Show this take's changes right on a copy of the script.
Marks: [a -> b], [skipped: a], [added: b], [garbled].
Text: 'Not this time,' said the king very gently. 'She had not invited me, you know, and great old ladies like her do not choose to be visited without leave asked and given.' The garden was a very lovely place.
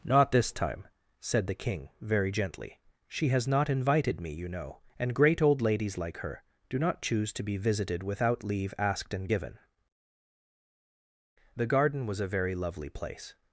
'Not this time,' said the king very gently. 'She [had -> has] not invited me, you know, and great old ladies like her do not choose to be visited without leave asked and given.' The garden was a very lovely place.